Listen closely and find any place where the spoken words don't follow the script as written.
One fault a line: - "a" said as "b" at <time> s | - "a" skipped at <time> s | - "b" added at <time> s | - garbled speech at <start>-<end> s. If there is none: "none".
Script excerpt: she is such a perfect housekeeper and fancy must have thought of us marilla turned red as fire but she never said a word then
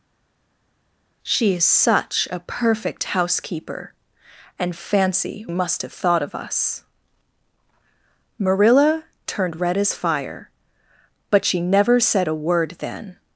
none